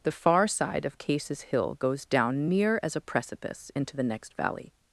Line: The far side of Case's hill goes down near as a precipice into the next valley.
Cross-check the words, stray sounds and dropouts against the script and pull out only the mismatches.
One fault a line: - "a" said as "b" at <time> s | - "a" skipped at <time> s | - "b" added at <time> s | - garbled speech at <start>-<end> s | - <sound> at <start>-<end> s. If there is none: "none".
none